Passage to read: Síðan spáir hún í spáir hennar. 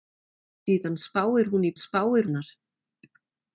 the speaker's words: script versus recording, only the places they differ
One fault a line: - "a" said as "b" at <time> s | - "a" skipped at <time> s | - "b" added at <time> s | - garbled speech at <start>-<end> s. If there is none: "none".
none